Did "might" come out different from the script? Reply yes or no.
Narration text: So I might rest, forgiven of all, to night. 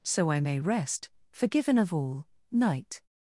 yes